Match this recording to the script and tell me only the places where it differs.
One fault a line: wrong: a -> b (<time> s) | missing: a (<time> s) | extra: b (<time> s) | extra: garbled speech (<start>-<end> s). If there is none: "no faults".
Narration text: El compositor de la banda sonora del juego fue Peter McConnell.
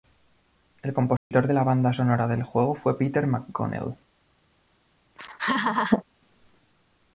no faults